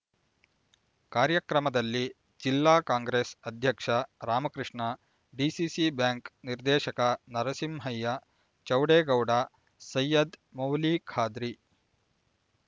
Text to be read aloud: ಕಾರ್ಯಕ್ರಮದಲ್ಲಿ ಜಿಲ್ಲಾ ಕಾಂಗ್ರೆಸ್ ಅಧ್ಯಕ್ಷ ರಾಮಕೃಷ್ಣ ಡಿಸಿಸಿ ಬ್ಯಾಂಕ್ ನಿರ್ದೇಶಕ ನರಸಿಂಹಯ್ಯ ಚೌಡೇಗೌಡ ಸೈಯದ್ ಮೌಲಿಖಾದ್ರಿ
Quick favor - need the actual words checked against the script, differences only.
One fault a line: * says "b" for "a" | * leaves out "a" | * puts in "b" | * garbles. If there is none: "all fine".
all fine